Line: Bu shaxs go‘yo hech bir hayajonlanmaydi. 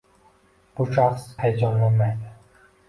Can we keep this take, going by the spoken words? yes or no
no